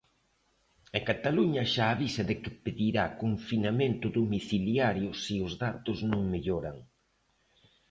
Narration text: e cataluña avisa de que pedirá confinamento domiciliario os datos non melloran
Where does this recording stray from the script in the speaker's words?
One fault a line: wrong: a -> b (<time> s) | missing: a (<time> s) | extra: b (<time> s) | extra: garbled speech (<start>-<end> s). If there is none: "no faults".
extra: xa (1.7 s)
extra: se (5.2 s)